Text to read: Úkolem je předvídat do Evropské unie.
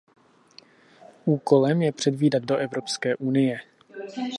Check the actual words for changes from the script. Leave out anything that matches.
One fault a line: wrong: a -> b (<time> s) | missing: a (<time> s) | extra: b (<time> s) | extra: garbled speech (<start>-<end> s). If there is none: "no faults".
no faults